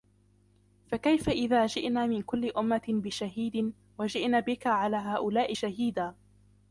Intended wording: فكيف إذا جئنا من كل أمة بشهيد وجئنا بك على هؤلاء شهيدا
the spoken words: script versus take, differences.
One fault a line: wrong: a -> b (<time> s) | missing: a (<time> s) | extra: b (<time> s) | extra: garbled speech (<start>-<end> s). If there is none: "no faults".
no faults